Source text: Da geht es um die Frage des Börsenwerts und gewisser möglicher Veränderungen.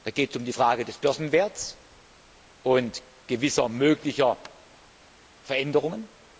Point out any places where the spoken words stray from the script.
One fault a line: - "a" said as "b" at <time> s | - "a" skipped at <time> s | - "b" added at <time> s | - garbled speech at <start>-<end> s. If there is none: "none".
none